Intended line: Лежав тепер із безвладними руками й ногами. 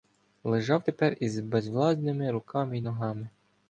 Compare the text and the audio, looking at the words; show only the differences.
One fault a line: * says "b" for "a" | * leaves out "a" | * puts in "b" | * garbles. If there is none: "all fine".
all fine